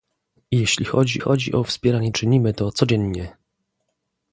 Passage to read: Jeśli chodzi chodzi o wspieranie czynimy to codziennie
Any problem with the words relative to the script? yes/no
no